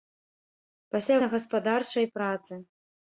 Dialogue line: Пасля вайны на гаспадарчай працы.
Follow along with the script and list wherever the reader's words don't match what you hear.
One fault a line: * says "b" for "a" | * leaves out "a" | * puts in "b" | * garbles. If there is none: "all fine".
* leaves out "вайны"